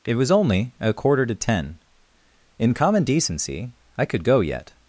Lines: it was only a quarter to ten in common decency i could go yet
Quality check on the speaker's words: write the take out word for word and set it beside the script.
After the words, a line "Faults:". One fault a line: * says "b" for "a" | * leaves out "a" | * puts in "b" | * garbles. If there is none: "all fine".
it was only a quarter to ten in common decency i could go yet
Faults:
all fine